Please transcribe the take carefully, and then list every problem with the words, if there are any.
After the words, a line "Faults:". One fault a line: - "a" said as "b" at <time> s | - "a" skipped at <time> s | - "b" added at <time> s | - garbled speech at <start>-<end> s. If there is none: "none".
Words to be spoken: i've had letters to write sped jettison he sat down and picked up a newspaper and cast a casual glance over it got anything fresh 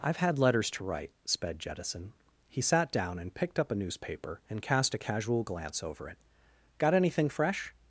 i've had letters to write sped jettison he sat down and picked up a newspaper and cast a casual glance over it got anything fresh
Faults:
none